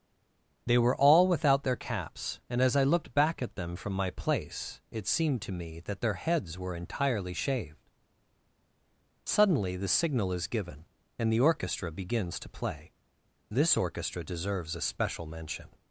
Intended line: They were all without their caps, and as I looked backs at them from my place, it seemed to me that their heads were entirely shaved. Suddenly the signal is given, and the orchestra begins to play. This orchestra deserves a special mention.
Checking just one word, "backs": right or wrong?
wrong